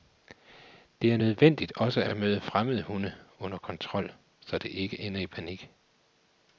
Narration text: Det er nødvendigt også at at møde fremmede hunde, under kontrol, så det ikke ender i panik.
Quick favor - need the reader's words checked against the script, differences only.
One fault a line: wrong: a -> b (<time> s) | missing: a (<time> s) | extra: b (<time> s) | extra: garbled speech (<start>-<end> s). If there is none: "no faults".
no faults